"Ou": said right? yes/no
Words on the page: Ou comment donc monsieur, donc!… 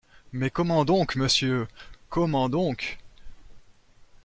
no